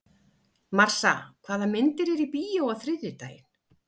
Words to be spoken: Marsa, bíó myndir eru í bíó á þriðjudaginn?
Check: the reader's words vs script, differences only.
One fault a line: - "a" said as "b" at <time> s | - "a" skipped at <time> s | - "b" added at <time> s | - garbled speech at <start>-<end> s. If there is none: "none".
- "bíó" said as "hvaða" at 1.5 s